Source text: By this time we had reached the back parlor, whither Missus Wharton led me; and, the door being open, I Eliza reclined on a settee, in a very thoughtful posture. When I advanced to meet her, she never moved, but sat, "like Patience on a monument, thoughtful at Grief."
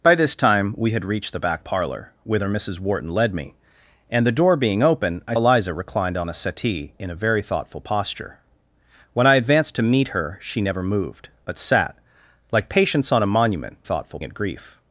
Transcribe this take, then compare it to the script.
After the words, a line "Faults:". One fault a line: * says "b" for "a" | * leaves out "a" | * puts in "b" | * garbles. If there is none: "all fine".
By this time we had reached the back parlor, whither Missus Wharton led me; and, the door being open, I Eliza reclined on a settee, in a very thoughtful posture. When I advanced to meet her, she never moved, but sat, "like Patience on a monument, thoughtful at Grief."
Faults:
all fine